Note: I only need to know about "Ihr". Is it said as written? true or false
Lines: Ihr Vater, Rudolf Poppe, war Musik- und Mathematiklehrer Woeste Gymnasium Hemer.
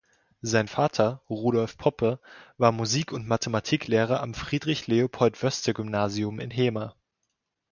false